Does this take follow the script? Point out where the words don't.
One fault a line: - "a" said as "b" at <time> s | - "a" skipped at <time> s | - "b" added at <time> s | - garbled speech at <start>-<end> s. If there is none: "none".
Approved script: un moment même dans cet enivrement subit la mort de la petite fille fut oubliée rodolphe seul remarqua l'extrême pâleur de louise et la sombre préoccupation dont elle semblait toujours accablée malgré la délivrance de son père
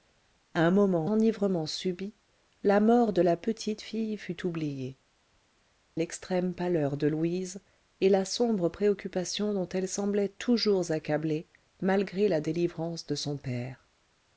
- "même dans cet" skipped at 1.1 s
- "rodolphe seul remarqua" skipped at 5.0 s